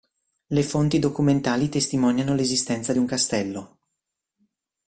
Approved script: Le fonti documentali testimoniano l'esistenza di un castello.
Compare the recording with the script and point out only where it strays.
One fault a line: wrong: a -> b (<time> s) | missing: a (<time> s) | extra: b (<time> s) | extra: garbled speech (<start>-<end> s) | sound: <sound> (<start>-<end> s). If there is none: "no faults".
no faults